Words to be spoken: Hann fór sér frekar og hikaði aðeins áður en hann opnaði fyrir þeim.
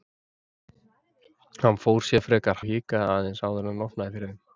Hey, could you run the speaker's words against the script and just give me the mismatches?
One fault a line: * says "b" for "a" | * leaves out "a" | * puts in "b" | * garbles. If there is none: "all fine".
all fine